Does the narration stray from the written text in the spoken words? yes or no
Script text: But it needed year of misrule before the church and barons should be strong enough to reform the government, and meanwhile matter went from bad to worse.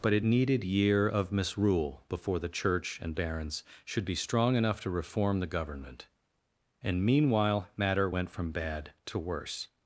no